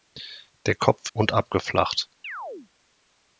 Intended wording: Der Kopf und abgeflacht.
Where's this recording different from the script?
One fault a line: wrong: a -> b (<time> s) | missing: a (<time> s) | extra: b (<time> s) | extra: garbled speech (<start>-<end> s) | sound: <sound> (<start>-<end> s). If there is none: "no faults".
sound: chirp (2.2-2.7 s)